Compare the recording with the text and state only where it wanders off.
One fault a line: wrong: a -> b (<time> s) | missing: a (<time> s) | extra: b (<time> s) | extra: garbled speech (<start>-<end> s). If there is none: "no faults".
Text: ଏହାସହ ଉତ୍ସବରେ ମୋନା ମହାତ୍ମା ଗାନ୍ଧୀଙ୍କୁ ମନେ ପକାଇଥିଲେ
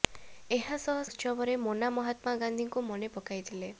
no faults